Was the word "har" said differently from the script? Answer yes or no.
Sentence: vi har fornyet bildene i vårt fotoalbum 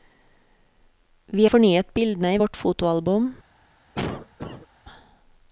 yes